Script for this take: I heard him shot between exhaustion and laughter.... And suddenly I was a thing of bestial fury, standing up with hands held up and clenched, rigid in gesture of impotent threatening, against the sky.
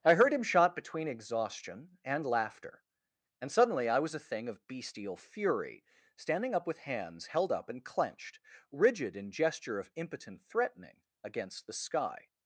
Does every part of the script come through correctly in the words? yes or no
yes